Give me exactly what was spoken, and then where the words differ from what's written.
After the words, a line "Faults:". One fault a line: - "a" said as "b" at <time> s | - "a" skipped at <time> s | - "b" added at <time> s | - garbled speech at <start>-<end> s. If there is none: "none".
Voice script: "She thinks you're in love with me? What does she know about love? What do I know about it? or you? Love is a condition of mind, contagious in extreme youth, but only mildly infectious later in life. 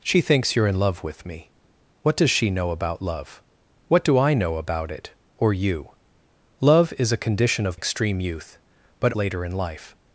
"She thinks you're in love with me? What does she know about love? What do I know about it? or you? Love is a condition of extreme youth, but later in life.
Faults:
- "mind contagious in" skipped at 7.8 s
- "only mildly infectious" skipped at 9.1 s